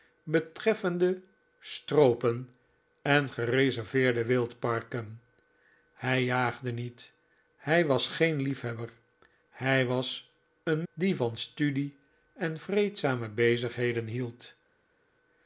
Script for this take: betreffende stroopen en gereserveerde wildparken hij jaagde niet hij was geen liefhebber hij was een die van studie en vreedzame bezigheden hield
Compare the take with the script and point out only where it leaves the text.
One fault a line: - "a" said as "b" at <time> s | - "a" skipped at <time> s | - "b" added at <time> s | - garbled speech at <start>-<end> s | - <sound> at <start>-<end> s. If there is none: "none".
none